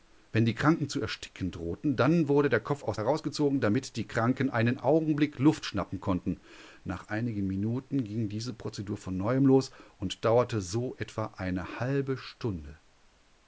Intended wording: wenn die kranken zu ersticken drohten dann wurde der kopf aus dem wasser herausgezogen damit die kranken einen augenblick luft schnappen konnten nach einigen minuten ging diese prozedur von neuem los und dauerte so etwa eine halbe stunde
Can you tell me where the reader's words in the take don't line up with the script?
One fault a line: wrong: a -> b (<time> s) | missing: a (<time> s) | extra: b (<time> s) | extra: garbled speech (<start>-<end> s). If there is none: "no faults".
missing: dem wasser (3.0 s)